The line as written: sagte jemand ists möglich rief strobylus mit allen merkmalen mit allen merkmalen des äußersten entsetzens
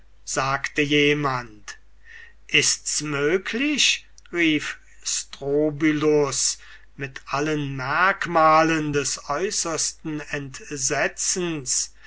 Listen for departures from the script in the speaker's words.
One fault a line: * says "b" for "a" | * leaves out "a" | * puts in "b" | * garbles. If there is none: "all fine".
* leaves out "mit allen merkmalen"